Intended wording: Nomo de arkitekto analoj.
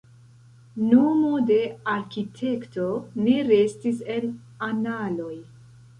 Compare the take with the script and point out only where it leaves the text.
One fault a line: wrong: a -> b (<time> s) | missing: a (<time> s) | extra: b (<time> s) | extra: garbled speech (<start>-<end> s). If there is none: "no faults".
extra: ne restis en (3.2 s)